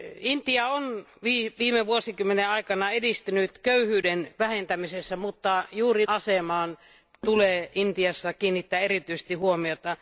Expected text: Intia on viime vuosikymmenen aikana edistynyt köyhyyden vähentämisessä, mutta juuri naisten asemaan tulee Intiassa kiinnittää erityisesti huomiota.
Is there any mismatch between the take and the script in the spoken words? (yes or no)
yes